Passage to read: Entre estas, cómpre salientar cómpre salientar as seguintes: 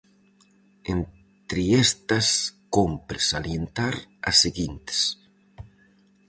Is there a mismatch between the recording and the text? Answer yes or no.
yes